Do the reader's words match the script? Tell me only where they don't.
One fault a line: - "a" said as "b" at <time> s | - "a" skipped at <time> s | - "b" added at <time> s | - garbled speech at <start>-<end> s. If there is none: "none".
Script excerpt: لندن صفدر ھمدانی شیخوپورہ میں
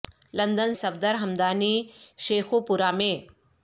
none